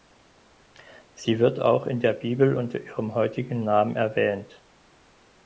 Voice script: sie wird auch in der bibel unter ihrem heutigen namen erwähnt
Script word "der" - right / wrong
right